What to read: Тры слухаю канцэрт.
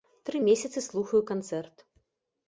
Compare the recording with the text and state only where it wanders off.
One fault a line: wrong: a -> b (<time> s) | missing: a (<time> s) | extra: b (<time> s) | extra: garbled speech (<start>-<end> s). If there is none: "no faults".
extra: месяцы (0.5 s)